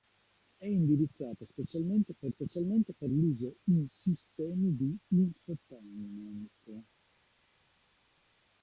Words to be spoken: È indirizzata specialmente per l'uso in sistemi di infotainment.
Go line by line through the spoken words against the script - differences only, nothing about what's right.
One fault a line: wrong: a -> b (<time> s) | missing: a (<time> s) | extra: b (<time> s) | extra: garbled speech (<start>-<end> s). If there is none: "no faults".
extra: specialmente per (2.3 s)